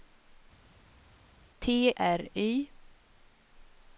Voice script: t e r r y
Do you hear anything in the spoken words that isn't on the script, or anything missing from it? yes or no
yes